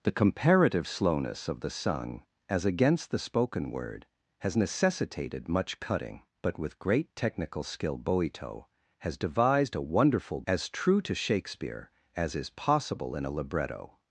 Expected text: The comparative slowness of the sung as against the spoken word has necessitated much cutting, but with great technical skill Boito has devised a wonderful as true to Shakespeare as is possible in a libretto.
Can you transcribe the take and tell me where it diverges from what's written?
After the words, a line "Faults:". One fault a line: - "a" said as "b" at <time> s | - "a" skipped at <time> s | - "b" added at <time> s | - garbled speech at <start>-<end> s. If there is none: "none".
The comparative slowness of the sung as against the spoken word has necessitated much cutting, but with great technical skill Boito has devised a wonderful as true to Shakespeare as is possible in a libretto.
Faults:
none